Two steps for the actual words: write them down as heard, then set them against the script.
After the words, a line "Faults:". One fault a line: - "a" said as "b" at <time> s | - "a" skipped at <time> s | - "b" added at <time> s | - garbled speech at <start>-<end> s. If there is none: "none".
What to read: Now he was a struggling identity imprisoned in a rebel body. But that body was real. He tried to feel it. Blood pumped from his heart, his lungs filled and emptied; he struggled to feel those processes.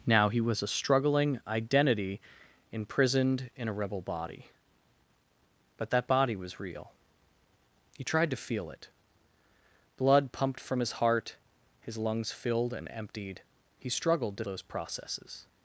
Now he was a struggling identity imprisoned in a rebel body. But that body was real. He tried to feel it. Blood pumped from his heart, his lungs filled and emptied; he struggled to those processes.
Faults:
- "feel" skipped at 14.4 s